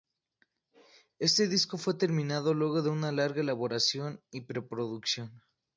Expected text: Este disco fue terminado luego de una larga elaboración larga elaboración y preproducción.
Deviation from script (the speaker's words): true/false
true